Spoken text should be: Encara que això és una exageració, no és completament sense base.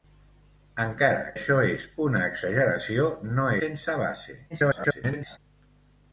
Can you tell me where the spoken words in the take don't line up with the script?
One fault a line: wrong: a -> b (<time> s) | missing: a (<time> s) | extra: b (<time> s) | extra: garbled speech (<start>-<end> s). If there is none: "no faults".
missing: que (1.3 s)
missing: és completament (3.5 s)
extra: garbled speech (4.5-5.4 s)